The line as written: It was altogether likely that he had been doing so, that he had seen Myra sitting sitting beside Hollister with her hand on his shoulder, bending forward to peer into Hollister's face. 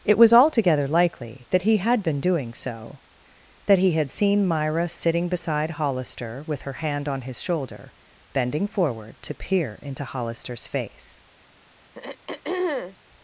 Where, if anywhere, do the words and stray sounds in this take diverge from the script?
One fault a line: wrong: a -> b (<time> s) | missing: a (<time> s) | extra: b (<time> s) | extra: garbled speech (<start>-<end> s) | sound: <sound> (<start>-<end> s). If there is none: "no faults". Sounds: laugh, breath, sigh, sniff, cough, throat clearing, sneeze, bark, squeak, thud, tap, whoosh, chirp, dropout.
missing: sitting (5.3 s)
sound: throat clearing (11.9-13.0 s)